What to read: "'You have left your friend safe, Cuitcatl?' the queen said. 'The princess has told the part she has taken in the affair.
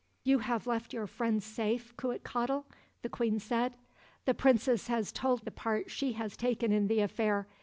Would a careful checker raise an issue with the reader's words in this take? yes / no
no